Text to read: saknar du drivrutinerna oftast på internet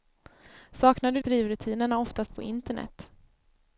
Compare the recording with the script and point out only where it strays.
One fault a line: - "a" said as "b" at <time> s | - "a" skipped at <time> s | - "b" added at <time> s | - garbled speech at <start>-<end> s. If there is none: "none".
none